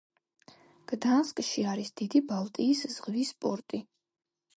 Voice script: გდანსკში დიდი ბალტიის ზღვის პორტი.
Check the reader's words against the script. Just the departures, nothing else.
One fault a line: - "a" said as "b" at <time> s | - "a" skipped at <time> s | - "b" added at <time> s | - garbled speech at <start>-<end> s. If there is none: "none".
- "არის" added at 1.7 s